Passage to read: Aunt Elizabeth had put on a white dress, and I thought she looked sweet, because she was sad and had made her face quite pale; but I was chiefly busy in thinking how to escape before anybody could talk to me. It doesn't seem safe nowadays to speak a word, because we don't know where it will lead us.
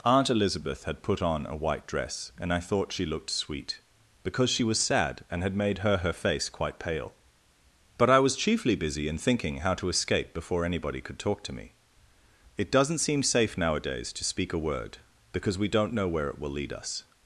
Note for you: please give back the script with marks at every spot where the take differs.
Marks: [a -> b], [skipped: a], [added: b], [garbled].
Aunt Elizabeth had put on a white dress, and I thought she looked sweet, because she was sad and had made her [added: her] face quite pale; but I was chiefly busy in thinking how to escape before anybody could talk to me. It doesn't seem safe nowadays to speak a word, because we don't know where it will lead us.